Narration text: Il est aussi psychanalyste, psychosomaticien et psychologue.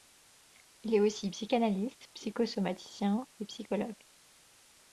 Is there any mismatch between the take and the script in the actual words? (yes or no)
no